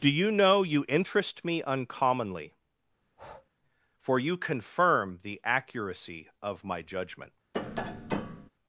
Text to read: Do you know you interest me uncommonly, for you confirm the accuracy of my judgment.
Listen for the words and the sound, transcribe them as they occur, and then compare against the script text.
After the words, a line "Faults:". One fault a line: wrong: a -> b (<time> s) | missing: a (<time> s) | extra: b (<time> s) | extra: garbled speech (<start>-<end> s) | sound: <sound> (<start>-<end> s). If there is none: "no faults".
Do you know you interest me uncommonly, for you confirm the accuracy of my judgment.
Faults:
sound: breath (3.0-3.5 s)
sound: tap (7.5-8.5 s)